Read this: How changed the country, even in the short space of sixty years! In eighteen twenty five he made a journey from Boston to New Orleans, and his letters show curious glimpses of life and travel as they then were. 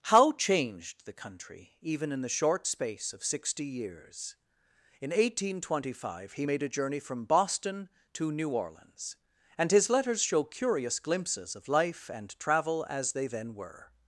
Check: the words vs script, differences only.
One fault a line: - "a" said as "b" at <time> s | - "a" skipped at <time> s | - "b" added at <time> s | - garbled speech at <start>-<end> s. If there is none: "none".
none